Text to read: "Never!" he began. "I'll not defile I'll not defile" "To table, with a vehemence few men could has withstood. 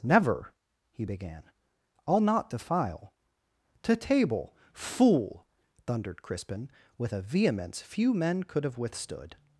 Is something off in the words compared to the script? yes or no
yes